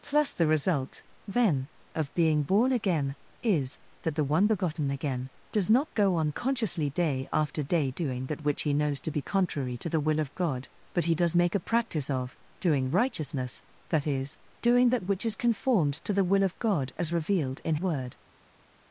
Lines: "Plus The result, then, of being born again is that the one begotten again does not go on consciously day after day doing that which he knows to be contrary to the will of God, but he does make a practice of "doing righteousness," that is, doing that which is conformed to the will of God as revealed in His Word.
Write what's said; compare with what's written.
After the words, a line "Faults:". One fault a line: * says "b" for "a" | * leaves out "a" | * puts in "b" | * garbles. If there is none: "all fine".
"Plus The result, then, of being born again is that the one begotten again does not go on consciously day after day doing that which he knows to be contrary to the will of God, but he does make a practice of "doing righteousness," that is, doing that which is conformed to the will of God as revealed in Word.
Faults:
* leaves out "His"